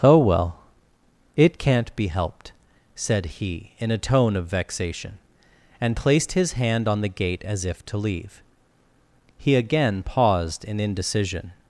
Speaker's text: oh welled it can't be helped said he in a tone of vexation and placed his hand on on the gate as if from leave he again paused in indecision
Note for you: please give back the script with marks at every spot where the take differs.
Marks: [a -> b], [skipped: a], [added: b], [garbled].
oh [welled -> well] it can't be helped said he in a tone of vexation and placed his hand on [skipped: on] the gate as if [from -> to] leave he again paused in indecision